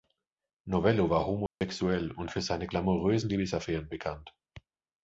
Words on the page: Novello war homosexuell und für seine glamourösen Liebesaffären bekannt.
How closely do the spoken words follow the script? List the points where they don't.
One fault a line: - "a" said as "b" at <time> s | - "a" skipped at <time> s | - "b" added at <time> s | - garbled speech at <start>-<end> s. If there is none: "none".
none